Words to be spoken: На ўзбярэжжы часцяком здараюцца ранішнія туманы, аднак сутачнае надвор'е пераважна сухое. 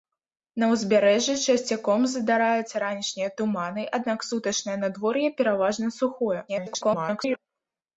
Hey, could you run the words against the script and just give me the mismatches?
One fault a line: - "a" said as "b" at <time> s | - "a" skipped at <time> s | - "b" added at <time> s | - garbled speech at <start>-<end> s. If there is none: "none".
- garbled speech at 6.5-7.4 s